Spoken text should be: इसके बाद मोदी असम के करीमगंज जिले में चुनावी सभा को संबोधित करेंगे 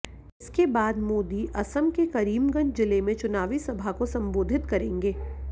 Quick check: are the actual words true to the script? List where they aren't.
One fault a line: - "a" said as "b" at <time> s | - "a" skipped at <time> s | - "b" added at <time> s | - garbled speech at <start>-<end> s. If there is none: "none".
none